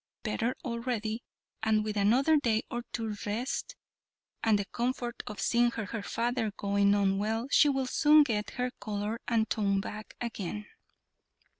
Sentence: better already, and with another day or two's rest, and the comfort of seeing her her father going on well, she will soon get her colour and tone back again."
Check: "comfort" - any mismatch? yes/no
no